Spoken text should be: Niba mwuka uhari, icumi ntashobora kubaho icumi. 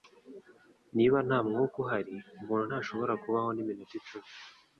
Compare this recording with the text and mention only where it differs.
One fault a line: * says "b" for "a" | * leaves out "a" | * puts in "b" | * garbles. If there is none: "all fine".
* puts in "nta"
* says "umuntu" for "icumi"
* puts in "niminota"